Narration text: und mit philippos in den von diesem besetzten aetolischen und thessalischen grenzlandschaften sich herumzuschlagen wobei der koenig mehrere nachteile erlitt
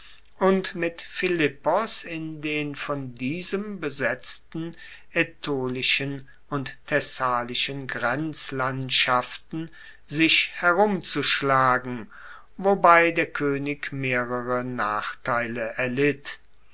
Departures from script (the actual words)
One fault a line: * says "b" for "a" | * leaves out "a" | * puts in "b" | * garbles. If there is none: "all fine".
all fine